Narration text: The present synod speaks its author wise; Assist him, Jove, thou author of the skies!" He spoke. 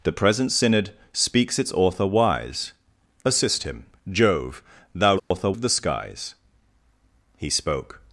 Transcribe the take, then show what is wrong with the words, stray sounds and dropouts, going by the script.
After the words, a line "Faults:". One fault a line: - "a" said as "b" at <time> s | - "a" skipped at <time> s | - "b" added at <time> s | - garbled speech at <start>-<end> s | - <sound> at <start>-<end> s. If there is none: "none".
The present synod speaks its author wise; Assist him, Jove, thou author of the skies!" He spoke.
Faults:
- dropout at 5.2-5.3 s